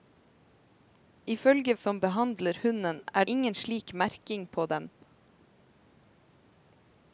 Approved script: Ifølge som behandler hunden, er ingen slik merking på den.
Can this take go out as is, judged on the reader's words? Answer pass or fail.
pass